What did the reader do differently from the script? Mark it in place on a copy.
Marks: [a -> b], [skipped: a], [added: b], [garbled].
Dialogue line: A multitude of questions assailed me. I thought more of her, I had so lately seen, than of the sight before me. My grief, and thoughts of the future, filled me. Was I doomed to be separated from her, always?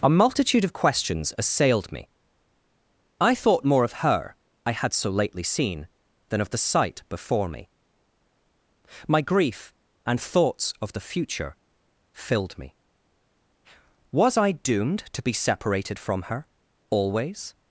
A multitude of questions assailed me. I thought more of her, I had so lately seen, than of the sight before me. My grief, and thoughts of the future, filled me. Was I doomed to be separated from her, always?